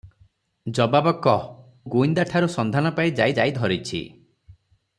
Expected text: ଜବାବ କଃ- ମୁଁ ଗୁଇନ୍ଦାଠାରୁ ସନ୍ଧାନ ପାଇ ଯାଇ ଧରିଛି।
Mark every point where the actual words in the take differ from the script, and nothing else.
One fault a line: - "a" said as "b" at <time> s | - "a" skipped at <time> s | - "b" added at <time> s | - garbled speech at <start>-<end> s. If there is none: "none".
- "ମୁଁ" skipped at 1.4 s
- "ଯାଇ" added at 3.3 s